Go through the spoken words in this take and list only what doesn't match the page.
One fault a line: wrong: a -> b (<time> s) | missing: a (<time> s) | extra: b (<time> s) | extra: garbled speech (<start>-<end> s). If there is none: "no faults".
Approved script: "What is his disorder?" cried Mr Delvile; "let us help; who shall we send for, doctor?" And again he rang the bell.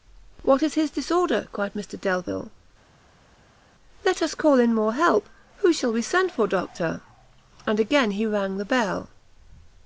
extra: call in more (4.3 s)